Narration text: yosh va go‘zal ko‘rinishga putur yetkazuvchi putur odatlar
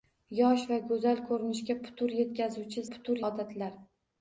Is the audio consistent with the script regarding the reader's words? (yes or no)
yes